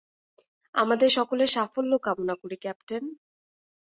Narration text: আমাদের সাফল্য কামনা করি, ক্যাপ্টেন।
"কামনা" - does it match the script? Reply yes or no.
yes